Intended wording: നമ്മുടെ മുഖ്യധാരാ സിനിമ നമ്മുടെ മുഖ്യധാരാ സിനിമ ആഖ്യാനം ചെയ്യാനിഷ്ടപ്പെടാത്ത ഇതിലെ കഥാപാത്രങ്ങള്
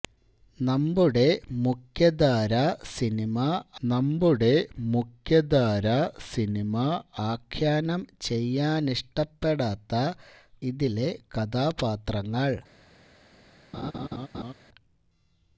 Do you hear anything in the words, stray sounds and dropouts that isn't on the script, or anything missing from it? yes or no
yes